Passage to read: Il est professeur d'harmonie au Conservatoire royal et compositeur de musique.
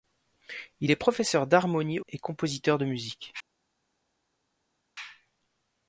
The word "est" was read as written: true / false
true